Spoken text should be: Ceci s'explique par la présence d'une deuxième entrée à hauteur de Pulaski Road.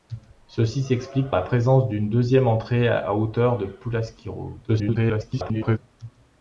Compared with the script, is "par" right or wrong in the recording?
wrong